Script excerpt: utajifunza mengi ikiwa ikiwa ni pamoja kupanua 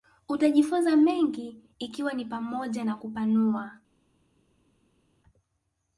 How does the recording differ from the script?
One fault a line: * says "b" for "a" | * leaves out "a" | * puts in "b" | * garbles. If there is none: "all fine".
* leaves out "ikiwa"
* puts in "na"